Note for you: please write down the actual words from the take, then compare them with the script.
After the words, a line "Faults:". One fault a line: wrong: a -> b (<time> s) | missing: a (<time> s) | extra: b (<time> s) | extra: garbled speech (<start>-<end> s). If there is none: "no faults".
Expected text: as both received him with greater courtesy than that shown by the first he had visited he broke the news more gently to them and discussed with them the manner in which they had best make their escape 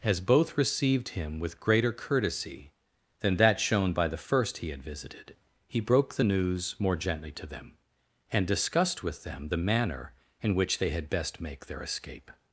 as both received him with greater courtesy than that shown by the first he had visited he broke the news more gently to them and discussed with them the manner in which they had best make their escape
Faults:
no faults